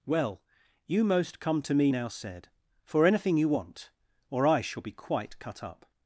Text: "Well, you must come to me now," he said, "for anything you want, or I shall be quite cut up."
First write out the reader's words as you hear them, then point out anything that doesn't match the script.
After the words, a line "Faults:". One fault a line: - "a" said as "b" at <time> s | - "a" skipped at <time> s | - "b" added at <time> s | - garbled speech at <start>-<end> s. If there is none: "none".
"Well, you most come to me now," said, "for anything you want, or I shall be quite cut up."
Faults:
- "must" said as "most" at 1.0 s
- "he" skipped at 2.1 s